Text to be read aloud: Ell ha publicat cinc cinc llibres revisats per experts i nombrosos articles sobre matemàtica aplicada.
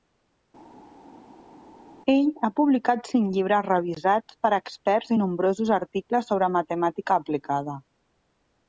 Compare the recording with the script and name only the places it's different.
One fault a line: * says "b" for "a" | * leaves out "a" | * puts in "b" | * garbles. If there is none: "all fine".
* leaves out "cinc"